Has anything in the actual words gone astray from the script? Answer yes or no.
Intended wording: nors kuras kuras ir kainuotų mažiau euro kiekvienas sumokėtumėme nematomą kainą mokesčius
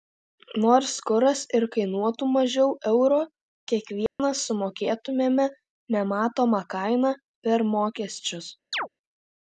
yes